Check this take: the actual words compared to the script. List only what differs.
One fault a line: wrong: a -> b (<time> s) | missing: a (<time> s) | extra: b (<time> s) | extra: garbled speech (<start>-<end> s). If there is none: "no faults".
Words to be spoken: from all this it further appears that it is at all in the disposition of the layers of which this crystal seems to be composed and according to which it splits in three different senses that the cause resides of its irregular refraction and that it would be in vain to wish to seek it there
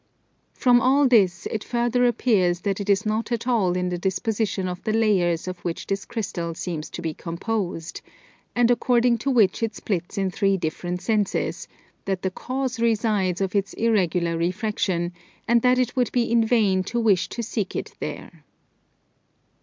extra: not (3.0 s)